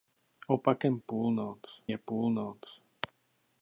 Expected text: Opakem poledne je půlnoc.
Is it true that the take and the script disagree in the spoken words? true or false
true